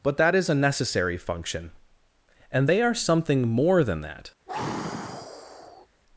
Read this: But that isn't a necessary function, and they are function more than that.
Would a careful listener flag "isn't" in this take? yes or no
yes